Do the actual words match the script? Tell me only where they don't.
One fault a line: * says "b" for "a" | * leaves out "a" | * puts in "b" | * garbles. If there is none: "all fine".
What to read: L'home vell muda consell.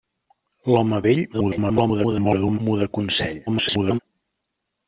* garbles
* garbles